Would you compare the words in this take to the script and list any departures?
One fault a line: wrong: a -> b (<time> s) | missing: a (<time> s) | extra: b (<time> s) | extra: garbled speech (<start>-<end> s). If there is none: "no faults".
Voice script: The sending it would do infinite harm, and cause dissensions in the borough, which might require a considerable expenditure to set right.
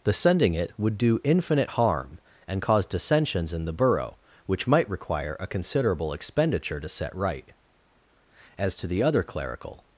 extra: As to the other clerical (8.6 s)